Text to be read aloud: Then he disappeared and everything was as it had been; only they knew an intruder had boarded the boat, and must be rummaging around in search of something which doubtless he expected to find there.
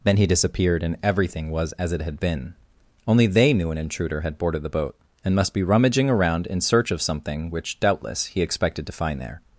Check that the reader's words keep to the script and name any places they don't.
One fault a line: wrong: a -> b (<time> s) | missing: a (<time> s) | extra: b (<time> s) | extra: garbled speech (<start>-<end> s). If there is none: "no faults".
no faults